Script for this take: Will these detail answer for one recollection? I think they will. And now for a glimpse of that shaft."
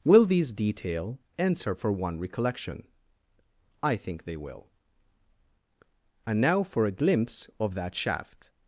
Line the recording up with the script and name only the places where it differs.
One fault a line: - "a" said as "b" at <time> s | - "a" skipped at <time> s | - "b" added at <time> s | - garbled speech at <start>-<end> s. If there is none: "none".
none